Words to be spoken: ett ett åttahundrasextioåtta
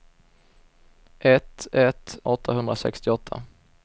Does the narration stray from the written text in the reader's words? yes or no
no